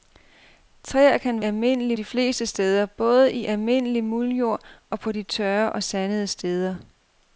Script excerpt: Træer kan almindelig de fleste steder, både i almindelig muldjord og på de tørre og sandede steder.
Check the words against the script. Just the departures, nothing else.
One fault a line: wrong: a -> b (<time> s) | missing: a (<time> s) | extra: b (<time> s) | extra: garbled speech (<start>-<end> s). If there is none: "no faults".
no faults